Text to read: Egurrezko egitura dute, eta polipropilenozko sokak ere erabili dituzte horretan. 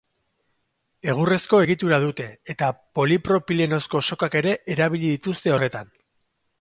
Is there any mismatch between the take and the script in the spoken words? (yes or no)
no